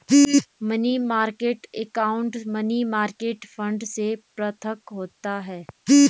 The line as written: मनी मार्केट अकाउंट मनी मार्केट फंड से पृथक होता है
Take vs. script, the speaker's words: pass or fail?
pass